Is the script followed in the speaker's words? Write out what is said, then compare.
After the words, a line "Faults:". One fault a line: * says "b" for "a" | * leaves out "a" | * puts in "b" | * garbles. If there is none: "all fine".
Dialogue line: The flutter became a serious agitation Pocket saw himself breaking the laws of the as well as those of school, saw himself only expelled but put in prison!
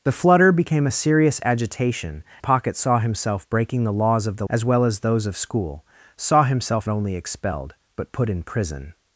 The flutter became a serious agitation Pocket saw himself breaking the laws of the as well as those of school, saw himself only expelled but put in prison!
Faults:
all fine